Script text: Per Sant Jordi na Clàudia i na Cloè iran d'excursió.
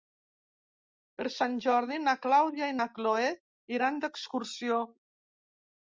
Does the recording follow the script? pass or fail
pass